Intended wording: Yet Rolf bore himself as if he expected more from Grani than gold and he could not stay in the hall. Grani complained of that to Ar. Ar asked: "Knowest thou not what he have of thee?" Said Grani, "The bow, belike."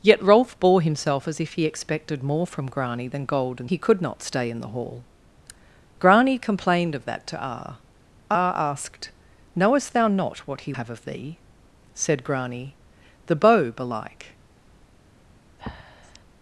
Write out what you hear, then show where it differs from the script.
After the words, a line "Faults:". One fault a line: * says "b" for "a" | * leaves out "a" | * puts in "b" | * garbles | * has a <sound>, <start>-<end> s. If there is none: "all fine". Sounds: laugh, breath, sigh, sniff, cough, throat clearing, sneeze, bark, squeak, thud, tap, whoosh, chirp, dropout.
Yet Rolf bore himself as if he expected more from Grani than gold and he could not stay in the hall. Grani complained of that to Ar. Ar asked: "Knowest thou not what he have of thee?" Said Grani, "The bow, belike."
Faults:
* has a breath, 15.6-16.2 s